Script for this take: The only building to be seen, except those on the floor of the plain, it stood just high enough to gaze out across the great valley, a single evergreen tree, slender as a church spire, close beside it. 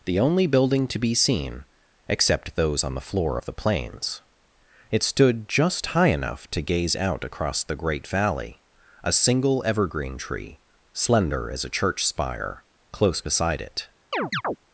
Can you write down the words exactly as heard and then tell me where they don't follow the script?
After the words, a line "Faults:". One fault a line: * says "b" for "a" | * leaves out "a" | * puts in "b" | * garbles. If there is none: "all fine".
The only building to be seen, except those on the floor of the plains, it stood just high enough to gaze out across the great valley, a single evergreen tree, slender as a church spire, close beside it.
Faults:
* says "plains" for "plain"